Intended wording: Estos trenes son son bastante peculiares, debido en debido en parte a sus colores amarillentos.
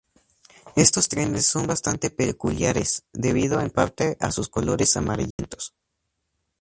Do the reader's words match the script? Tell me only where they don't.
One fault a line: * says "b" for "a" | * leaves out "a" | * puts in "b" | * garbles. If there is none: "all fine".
* leaves out "son"
* leaves out "debido en"